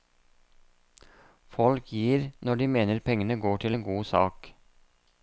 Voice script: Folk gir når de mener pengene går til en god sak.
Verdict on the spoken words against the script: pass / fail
pass